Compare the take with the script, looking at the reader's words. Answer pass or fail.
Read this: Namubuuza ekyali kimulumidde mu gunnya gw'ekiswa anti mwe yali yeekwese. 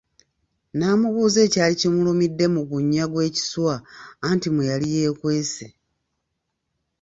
pass